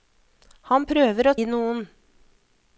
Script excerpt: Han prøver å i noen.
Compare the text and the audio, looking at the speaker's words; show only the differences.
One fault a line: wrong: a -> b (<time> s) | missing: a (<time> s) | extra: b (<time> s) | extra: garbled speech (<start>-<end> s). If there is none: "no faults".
no faults